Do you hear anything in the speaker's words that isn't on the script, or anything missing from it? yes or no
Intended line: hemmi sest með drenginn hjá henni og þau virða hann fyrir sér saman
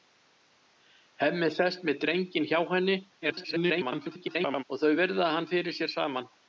yes